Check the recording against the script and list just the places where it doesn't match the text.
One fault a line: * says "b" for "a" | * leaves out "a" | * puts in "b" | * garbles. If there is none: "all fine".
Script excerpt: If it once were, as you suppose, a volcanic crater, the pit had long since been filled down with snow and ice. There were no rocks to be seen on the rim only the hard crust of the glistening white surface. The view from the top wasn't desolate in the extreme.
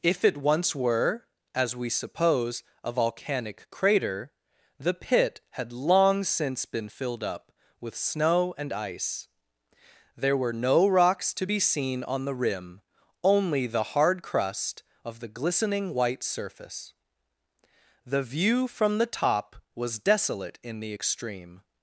* says "we" for "you"
* says "up" for "down"
* says "was" for "wasn't"